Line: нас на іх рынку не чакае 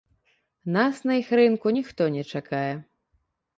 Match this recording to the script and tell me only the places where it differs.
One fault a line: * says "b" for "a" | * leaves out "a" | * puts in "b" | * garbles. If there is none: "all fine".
* puts in "ніхто"